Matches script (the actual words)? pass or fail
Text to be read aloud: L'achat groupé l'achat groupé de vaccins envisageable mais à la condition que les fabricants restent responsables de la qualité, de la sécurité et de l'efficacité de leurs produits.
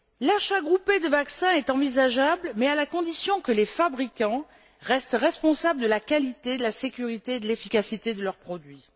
fail